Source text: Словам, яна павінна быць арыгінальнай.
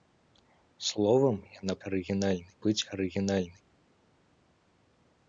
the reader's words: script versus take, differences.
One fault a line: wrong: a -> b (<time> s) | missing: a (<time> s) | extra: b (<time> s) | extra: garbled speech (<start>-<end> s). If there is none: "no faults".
wrong: павінна -> арыгінальнай (1.9 s)